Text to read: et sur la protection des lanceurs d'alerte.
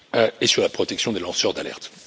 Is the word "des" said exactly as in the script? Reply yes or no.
yes